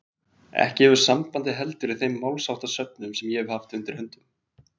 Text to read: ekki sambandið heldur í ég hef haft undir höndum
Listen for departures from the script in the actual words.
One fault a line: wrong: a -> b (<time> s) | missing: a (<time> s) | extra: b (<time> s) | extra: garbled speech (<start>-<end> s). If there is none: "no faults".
extra: hefur (0.9 s)
extra: þeim málsháttasöfnum sem (2.0 s)